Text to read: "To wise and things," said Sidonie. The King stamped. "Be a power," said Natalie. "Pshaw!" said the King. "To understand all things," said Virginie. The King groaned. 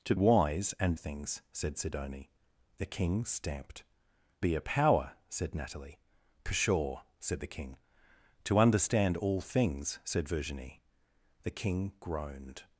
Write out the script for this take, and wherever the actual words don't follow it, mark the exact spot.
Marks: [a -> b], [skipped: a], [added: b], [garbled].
"To wise and things," said Sidonie. The King stamped. "Be a power," said Natalie. "Pshaw!" said the King. "To understand all things," said Virginie. The King groaned.